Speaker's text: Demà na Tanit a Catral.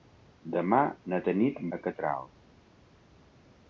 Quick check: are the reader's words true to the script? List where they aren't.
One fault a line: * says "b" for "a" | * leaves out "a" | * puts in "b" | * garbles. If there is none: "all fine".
all fine